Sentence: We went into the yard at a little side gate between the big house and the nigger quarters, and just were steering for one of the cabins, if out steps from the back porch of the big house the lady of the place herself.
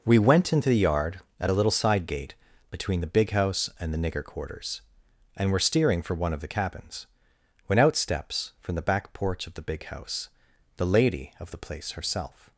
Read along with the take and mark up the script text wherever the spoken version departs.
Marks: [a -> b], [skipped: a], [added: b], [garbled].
We went into the yard at a little side gate between the big house and the nigger quarters, and [skipped: just] were steering for one of the cabins, [if -> when] out steps from the back porch of the big house the lady of the place herself.